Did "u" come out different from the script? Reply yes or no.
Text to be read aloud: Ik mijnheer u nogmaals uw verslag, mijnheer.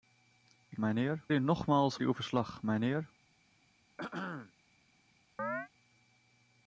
no